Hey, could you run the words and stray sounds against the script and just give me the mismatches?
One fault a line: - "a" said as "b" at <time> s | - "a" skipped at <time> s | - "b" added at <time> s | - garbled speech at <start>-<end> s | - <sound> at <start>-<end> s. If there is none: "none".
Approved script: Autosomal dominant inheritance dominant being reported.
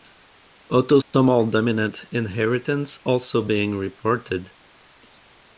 - dropout at 1.0-1.1 s
- "dominant" said as "also" at 3.0 s